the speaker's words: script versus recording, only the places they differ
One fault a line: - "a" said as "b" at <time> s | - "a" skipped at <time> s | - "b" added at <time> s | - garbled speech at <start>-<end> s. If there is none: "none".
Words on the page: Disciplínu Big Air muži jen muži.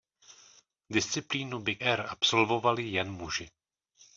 - "muži" said as "absolvovali" at 2.1 s